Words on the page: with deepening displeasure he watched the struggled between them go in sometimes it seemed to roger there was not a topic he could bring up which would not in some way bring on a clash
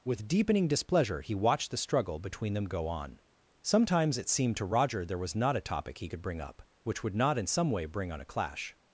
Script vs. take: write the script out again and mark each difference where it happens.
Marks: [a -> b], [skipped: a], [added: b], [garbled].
with deepening displeasure he watched the [struggled -> struggle] between them go [in -> on] sometimes it seemed to roger there was not a topic he could bring up which would not in some way bring on a clash